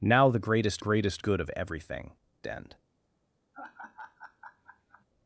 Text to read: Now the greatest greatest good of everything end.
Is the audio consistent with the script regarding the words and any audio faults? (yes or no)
no